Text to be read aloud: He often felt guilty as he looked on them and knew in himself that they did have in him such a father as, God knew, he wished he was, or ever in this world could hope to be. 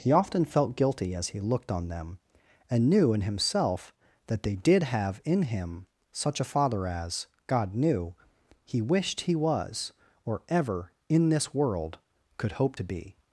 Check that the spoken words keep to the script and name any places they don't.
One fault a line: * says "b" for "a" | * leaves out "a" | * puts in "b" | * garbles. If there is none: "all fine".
all fine